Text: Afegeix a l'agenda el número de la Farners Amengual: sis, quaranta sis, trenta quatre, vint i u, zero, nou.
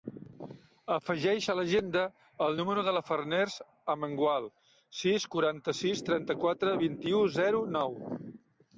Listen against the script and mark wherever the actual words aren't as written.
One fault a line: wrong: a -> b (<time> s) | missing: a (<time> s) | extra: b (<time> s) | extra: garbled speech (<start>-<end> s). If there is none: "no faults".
no faults